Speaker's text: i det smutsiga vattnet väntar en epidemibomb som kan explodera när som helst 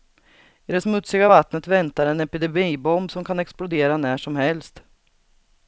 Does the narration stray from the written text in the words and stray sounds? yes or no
no